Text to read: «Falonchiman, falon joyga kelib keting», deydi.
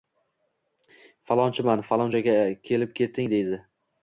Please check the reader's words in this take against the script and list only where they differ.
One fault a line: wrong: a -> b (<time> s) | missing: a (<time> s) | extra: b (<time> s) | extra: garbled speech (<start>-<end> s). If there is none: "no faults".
no faults